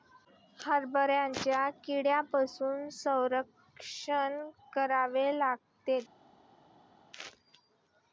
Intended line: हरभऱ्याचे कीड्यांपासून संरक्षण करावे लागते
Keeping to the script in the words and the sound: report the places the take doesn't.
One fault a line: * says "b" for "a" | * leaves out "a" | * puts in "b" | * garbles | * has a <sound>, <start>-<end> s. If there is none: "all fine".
all fine